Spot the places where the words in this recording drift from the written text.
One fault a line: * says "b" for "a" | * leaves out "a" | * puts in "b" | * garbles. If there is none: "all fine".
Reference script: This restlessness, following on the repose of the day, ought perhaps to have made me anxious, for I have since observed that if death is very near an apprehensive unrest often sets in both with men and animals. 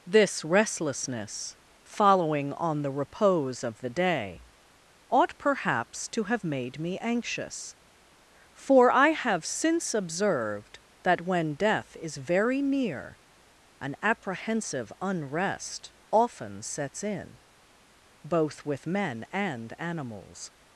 * says "when" for "if"